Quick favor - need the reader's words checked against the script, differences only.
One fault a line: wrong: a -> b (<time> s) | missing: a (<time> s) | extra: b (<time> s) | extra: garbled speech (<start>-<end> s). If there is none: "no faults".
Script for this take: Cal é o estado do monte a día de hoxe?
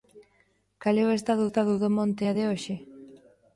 extra: estado (1.5 s)
missing: día (2.3 s)